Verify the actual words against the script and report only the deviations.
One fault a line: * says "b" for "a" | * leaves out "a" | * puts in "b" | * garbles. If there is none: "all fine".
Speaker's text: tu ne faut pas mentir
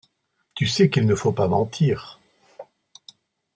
* puts in "sais qu'il"